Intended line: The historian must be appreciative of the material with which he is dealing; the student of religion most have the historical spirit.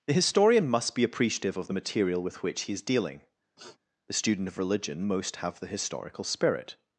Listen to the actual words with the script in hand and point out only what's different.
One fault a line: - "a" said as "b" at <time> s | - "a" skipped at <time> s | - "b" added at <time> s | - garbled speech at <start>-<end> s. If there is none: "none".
none